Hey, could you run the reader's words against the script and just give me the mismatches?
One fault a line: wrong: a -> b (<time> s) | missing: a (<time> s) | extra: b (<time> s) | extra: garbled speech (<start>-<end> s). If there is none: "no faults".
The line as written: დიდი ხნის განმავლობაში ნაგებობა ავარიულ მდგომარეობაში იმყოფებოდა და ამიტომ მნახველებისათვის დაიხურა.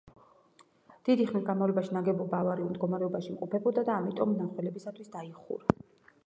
no faults